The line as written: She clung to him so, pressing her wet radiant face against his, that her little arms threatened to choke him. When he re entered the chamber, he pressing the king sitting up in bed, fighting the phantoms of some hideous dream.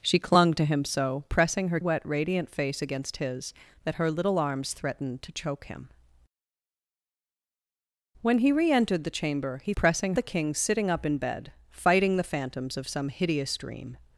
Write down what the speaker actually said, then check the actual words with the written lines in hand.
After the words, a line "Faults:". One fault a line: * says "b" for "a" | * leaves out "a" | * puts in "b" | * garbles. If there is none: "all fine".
She clung to him so, pressing her wet radiant face against his, that her little arms threatened to choke him. When he re entered the chamber, he pressing the king sitting up in bed, fighting the phantoms of some hideous dream.
Faults:
all fine